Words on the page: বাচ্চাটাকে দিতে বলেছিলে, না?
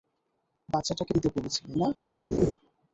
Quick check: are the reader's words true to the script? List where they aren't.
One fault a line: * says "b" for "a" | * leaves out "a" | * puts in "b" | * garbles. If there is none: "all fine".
all fine